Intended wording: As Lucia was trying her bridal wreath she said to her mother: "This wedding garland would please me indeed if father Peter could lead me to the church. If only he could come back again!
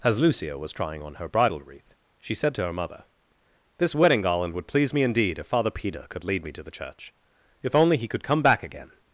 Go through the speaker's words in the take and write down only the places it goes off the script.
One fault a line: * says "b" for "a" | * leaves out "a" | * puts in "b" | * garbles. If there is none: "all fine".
* puts in "on"